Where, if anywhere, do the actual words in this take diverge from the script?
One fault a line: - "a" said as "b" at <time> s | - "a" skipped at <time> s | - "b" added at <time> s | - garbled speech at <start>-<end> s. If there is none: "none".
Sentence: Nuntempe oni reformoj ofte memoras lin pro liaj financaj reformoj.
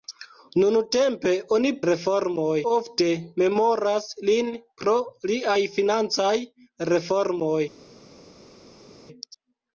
none